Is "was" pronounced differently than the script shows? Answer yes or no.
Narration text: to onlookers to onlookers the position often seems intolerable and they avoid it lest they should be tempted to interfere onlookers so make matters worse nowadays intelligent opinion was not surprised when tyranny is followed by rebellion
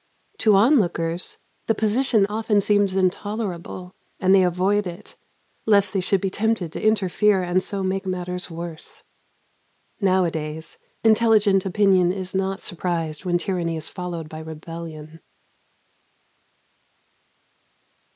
yes